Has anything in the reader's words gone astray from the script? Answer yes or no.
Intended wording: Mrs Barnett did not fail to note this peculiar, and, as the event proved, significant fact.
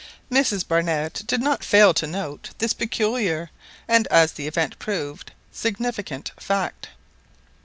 no